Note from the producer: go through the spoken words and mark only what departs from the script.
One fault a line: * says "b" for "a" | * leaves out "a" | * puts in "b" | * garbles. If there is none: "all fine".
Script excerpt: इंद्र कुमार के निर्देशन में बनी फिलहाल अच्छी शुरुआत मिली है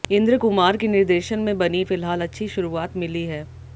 all fine